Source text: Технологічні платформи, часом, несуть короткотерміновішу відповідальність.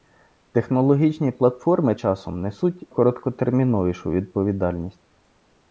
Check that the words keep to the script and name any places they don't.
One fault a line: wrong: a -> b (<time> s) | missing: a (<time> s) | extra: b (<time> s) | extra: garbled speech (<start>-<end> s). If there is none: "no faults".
no faults